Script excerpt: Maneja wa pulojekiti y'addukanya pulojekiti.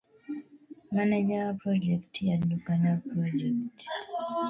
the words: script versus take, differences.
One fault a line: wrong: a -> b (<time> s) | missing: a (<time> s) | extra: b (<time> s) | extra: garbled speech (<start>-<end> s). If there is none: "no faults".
no faults